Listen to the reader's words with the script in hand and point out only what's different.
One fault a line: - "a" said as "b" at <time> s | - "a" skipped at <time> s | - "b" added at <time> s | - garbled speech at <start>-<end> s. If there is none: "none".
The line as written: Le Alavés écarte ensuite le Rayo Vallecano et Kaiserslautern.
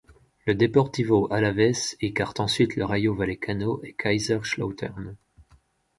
- "Deportivo" added at 0.6 s